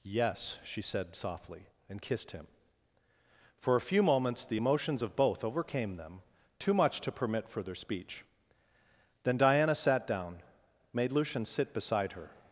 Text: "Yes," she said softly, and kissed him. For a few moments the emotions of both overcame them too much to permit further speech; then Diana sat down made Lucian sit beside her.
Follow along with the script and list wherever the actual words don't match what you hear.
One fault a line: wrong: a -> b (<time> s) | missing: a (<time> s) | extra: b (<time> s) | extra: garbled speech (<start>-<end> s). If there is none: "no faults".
no faults